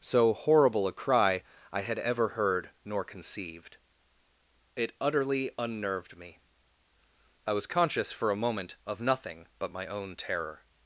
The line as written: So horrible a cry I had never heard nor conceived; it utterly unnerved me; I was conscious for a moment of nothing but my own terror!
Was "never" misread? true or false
true